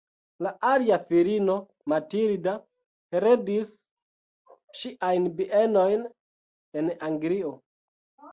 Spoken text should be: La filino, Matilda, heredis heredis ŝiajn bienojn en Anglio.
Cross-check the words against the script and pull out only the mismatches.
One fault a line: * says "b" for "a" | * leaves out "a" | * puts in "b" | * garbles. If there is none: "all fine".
* puts in "alia"
* leaves out "heredis"